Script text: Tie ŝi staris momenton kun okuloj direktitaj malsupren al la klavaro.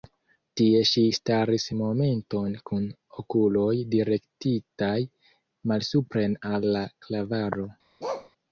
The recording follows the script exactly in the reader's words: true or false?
true